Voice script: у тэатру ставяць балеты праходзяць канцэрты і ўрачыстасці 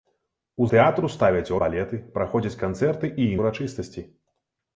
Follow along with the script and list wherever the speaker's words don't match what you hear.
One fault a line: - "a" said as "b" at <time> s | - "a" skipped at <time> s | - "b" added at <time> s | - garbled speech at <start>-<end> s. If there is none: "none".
none